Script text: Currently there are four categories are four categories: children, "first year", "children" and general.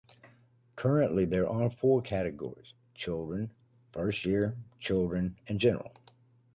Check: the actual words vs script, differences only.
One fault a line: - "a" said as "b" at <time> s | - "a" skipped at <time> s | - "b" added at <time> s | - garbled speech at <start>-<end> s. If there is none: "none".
- "are four categories" skipped at 2.7 s